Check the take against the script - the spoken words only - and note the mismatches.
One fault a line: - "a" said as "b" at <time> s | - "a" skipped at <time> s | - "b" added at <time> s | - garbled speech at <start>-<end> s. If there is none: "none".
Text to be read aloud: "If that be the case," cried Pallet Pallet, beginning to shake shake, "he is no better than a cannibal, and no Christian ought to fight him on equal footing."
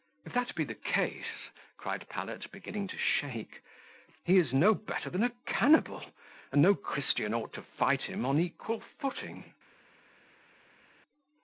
- "Pallet" skipped at 2.5 s
- "shake" skipped at 3.6 s